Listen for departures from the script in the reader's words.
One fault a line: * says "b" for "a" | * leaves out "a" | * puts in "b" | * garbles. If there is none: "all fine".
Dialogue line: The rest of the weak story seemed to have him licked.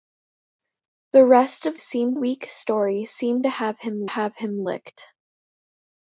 * says "seemed" for "the"
* puts in "have him"